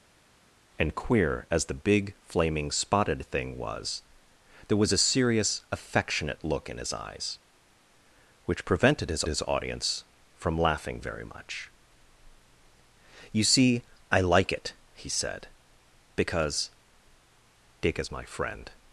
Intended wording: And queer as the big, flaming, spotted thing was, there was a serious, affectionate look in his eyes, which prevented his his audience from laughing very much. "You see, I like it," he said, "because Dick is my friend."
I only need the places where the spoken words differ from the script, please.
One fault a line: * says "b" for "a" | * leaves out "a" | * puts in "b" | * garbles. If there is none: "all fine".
all fine